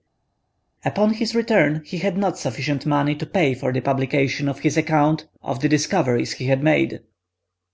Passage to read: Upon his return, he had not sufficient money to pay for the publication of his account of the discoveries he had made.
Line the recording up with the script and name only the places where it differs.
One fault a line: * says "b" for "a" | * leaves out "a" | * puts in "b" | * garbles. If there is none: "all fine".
all fine